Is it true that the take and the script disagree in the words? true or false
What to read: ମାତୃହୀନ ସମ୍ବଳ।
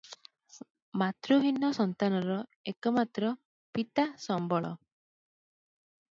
true